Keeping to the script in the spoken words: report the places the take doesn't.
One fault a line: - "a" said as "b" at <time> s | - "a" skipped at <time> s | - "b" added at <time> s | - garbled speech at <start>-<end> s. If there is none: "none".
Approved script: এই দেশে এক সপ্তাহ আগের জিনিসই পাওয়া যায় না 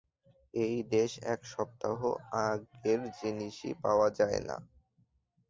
none